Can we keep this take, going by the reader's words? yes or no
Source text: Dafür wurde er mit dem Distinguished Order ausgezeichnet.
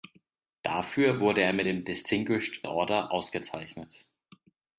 yes